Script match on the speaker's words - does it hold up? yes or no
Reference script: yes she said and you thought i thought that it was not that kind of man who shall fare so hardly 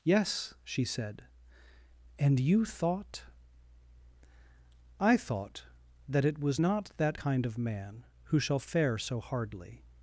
yes